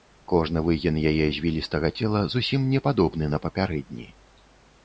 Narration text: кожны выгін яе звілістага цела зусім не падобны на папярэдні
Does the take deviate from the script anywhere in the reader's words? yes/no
no